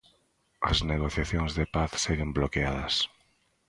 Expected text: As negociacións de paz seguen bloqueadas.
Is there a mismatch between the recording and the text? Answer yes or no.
no